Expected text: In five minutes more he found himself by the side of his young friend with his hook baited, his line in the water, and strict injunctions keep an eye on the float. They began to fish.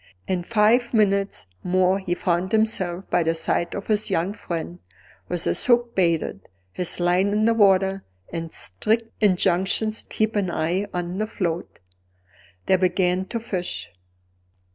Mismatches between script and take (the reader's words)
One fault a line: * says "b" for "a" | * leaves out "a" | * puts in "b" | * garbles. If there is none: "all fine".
all fine